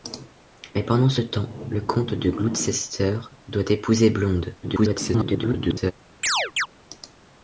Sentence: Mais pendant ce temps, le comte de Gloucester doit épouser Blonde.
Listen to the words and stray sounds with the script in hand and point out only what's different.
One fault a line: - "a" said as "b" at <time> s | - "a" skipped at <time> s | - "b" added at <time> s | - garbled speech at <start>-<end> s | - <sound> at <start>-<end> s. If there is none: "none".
- garbled speech at 4.6-5.9 s
- chirp at 6.2-6.7 s